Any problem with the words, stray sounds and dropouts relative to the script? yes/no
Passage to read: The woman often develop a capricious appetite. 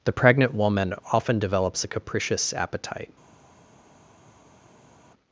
yes